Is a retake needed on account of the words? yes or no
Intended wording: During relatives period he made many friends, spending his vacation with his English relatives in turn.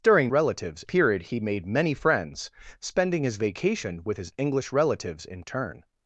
no